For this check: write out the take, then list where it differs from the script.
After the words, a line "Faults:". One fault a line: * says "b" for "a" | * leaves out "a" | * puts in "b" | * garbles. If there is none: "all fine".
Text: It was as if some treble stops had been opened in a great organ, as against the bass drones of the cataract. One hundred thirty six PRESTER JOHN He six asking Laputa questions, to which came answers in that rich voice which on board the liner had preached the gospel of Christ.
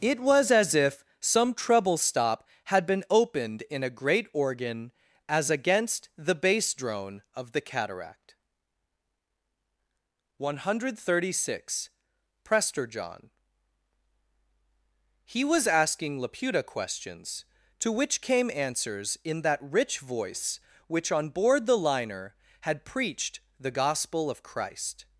It was as if some treble stop had been opened in a great organ, as against the bass drone of the cataract. One hundred thirty six PRESTER JOHN He was asking Laputa questions, to which came answers in that rich voice which on board the liner had preached the gospel of Christ.
Faults:
* says "stop" for "stops"
* says "drone" for "drones"
* says "was" for "six"